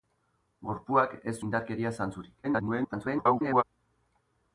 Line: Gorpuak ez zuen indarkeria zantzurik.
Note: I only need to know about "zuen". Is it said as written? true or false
false